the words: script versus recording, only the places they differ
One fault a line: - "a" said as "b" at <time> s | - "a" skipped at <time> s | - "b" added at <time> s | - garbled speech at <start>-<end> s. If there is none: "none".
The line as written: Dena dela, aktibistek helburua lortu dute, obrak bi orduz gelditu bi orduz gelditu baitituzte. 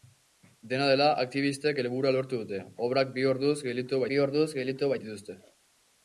none